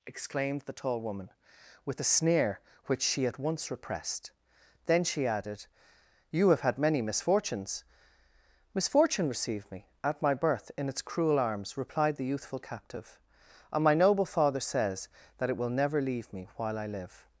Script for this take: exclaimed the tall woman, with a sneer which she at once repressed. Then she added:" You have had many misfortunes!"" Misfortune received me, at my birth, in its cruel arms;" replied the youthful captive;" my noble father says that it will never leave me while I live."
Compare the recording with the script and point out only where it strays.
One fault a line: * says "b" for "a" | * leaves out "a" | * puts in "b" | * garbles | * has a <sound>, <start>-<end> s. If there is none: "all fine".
* puts in "and"